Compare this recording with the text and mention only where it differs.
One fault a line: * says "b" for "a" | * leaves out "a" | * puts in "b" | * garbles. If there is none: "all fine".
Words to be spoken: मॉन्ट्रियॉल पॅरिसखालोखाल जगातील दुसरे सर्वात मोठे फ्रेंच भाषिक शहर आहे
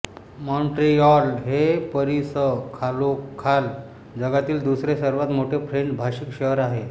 * puts in "हे"